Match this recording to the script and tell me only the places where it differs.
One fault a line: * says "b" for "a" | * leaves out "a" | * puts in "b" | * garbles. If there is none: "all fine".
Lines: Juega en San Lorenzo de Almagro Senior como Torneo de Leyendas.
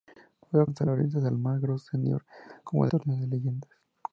all fine